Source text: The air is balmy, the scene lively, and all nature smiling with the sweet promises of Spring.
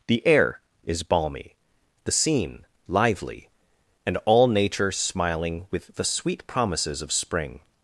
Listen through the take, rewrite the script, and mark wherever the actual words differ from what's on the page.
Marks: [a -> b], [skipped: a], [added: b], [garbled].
The air is balmy, the scene lively, and all nature smiling with the sweet promises of Spring.